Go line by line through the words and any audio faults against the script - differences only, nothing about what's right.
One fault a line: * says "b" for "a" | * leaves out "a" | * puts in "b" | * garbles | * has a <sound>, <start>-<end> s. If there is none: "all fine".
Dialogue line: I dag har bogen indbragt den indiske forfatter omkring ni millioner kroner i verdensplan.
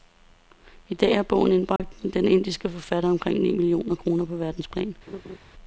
* has a dropout, 1.8-1.8 s
* says "på" for "i"
* has a laugh, 5.1-5.4 s